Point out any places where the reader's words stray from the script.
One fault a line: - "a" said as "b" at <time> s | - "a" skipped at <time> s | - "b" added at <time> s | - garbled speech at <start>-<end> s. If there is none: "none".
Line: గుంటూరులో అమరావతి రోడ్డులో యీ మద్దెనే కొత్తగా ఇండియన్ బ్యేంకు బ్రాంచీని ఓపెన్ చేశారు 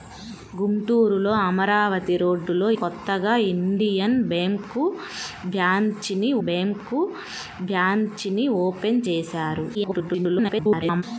- "యీ మద్దెనే కొత్తగా ఇండియన్" said as "కొత్తగా ఇండియన్ బ్యేంకు బ్రాంచీని" at 2.8 s
- garbled speech at 9.7-11.0 s